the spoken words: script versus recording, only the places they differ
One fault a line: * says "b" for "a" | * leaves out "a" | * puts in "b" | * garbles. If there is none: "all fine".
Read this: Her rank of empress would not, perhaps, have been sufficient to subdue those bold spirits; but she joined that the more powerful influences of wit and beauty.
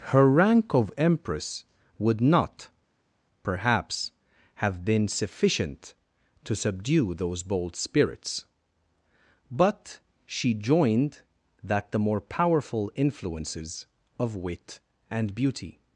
all fine